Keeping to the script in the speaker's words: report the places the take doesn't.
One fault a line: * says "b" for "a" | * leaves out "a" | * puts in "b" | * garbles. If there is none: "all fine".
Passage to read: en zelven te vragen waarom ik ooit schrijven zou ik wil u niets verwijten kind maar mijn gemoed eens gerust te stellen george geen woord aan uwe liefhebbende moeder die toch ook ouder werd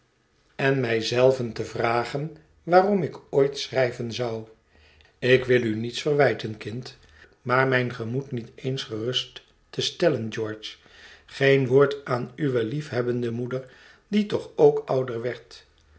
* puts in "mij"
* puts in "niet"